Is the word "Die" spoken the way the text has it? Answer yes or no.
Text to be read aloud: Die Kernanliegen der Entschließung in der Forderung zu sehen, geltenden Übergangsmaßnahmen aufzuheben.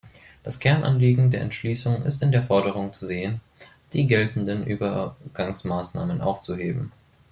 no